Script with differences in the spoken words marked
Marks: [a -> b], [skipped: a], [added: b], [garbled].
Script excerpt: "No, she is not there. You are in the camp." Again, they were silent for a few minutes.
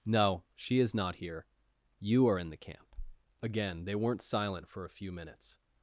"No, she is not [there. -> here] You are in the camp." Again, they [were -> weren't] silent for a few minutes.